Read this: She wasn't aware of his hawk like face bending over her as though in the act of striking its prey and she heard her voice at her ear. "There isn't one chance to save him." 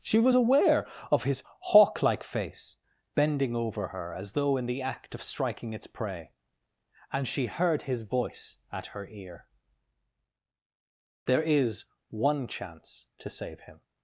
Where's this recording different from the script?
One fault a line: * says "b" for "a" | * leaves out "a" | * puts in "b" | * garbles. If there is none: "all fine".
* says "was" for "wasn't"
* says "his" for "her"
* says "is" for "isn't"